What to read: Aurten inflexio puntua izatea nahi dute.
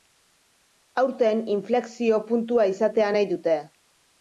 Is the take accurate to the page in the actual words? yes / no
yes